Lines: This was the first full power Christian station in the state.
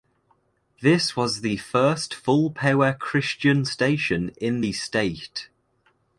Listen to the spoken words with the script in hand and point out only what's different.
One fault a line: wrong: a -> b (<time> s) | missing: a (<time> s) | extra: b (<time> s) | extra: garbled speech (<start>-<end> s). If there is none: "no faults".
no faults